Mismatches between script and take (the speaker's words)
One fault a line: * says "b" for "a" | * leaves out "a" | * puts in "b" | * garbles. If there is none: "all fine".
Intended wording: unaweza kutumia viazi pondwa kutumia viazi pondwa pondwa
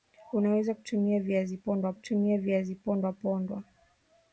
all fine